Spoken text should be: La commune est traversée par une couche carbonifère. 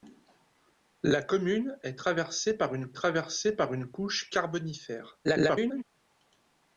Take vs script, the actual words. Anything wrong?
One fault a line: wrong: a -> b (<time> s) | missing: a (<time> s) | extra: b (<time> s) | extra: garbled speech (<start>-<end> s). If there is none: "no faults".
extra: traversée par une (2.9 s)
extra: garbled speech (5.2-5.8 s)